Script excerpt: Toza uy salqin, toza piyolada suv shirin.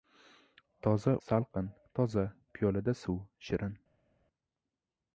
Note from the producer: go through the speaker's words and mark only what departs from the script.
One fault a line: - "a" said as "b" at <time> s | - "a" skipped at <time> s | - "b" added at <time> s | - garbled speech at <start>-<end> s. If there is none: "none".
- "uy" skipped at 1.1 s